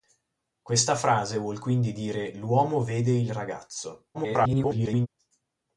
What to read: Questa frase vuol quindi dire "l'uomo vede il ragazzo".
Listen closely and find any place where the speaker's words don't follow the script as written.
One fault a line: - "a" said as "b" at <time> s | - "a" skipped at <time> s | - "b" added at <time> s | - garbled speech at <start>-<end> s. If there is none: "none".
- garbled speech at 4.1-5.1 s